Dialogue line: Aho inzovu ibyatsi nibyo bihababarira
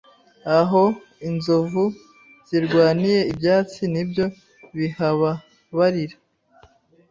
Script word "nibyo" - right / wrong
right